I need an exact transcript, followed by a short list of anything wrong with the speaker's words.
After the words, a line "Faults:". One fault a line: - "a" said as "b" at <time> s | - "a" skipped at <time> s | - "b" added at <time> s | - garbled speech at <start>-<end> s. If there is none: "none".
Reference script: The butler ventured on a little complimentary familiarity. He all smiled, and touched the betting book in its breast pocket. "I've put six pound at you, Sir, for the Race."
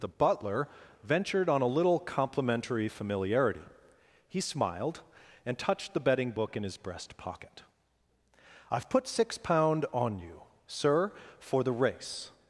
The butler ventured on a little complimentary familiarity. He smiled, and touched the betting book in his breast pocket. "I've put six pound on you, Sir, for the Race."
Faults:
- "all" skipped at 4.4 s
- "its" said as "his" at 6.6 s
- "at" said as "on" at 9.9 s